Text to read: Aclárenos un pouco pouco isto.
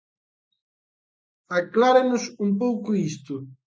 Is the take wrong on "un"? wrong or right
right